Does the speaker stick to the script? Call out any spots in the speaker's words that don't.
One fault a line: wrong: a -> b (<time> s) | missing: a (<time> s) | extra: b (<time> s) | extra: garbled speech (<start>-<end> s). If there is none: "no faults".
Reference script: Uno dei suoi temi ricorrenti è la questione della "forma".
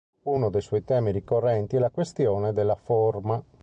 no faults